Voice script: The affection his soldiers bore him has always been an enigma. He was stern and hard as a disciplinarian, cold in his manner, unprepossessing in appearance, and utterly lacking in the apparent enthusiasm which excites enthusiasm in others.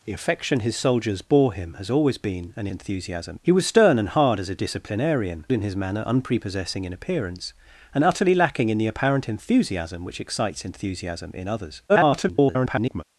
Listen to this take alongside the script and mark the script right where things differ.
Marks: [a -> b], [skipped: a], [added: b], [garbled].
The affection his soldiers bore him has always been an [enigma. -> enthusiasm] He was stern and hard as a disciplinarian, [skipped: cold] in his manner, unprepossessing in appearance, and utterly lacking in the apparent enthusiasm which excites enthusiasm in others. [garbled]